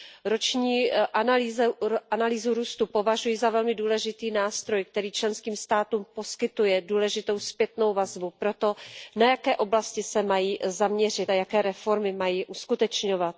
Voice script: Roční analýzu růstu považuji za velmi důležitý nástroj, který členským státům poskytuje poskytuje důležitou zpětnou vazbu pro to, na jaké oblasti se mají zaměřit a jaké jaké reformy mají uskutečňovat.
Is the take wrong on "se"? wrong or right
right